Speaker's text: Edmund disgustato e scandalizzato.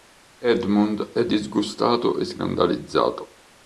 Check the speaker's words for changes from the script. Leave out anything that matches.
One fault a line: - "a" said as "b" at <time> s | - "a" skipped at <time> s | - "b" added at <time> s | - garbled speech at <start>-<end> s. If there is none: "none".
- "è" added at 1.1 s